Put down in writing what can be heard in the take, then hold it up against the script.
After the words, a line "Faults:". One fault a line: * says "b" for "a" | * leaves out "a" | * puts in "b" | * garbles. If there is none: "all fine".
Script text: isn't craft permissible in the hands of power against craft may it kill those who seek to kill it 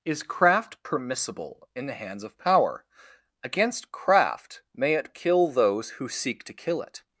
is craft permissible in the hands of power against craft may it kill those who seek to kill it
Faults:
* says "is" for "isn't"